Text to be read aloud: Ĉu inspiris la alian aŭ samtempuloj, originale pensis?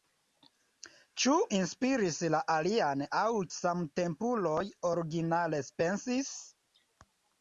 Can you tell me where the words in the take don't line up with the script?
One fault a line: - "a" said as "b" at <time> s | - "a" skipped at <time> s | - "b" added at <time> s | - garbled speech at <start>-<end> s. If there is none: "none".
none